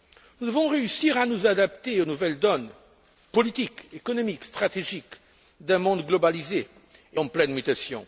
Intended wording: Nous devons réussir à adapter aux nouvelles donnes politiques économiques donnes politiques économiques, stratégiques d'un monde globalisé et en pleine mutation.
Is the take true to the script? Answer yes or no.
no